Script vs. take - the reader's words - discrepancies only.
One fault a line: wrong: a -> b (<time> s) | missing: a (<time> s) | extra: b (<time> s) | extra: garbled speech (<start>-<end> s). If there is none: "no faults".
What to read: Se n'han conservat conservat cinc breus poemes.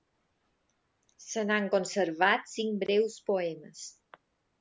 missing: conservat (2.5 s)